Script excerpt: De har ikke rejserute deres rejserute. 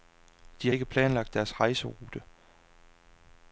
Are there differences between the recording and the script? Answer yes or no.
yes